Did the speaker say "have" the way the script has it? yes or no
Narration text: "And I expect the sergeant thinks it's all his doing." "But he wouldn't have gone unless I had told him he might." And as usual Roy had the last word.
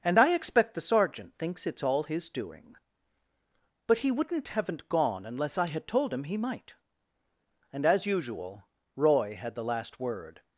no